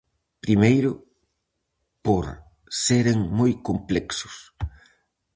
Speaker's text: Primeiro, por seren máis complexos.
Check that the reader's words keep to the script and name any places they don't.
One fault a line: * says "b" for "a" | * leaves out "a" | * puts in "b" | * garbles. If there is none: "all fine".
* says "moi" for "máis"